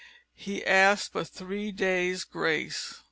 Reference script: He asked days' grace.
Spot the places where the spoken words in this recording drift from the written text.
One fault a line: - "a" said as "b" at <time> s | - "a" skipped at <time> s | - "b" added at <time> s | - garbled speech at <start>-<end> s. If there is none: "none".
- "but three" added at 1.1 s